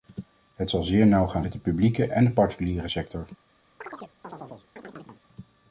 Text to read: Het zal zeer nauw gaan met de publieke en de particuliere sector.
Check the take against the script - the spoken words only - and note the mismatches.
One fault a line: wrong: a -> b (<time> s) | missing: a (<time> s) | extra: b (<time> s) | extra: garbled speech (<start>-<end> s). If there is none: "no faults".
no faults